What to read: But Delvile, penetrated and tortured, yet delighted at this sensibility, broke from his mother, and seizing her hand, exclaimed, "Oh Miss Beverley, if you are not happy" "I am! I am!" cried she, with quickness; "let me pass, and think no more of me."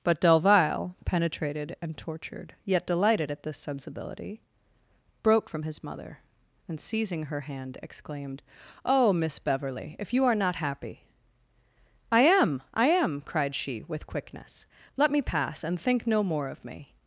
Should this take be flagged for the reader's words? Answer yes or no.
no